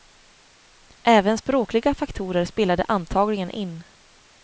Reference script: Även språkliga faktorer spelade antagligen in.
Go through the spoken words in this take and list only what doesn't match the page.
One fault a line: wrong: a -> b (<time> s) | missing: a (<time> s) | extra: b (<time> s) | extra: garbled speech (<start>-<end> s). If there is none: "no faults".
no faults